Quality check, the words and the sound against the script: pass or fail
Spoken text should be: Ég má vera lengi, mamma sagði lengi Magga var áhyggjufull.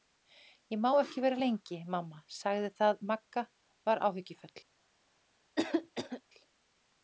fail